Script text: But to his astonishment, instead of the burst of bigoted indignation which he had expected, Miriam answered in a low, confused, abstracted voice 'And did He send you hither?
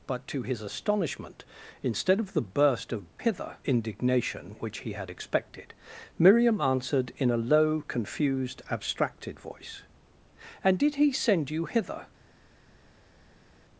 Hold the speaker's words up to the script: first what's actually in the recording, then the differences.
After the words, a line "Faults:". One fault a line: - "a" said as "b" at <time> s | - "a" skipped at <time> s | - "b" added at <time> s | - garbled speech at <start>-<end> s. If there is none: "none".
But to his astonishment, instead of the burst of hither indignation which he had expected, Miriam answered in a low, confused, abstracted voice 'And did He send you hither?
Faults:
- "bigoted" said as "hither" at 3.2 s